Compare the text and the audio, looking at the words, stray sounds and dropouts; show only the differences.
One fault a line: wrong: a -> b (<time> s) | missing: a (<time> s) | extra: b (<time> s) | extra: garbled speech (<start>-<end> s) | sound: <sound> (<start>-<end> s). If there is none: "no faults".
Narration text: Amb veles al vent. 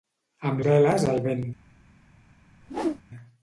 sound: whoosh (2.6-3.0 s)